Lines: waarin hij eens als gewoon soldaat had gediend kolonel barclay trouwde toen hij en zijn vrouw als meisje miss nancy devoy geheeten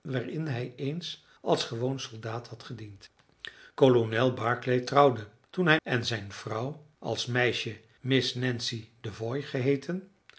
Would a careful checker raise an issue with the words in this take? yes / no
no